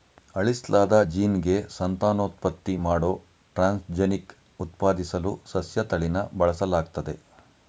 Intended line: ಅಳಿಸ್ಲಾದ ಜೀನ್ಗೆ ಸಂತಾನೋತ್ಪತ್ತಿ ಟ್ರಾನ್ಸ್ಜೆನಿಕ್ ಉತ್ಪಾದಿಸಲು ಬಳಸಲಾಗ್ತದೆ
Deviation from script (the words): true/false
true